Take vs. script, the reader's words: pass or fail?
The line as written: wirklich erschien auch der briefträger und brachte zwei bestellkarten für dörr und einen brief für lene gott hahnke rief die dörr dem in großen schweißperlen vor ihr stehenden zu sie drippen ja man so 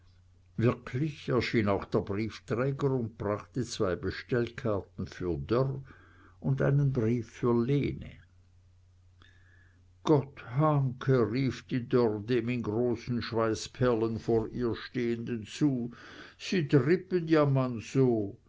pass